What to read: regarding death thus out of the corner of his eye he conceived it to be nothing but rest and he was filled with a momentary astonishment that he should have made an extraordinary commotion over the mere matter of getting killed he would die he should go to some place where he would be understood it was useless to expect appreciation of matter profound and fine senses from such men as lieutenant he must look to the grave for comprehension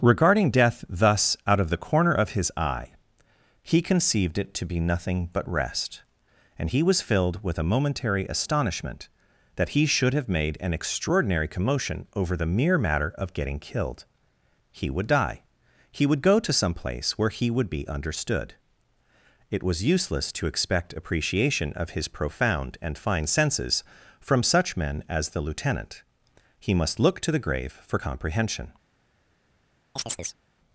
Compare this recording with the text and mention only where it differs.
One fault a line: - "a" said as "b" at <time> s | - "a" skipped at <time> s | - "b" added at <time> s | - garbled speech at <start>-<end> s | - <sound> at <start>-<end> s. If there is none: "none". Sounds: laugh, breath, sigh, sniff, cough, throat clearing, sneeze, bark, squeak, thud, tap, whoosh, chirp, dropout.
- "should" said as "would" at 16.1 s
- "matter" said as "his" at 21.9 s
- "the" added at 25.3 s
- chirp at 30.0-30.4 s